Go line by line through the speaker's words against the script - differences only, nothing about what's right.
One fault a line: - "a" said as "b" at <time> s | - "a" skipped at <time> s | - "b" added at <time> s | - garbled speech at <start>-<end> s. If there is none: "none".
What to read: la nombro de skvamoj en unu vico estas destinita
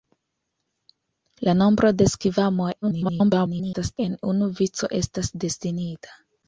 - garbled speech at 2.8-4.0 s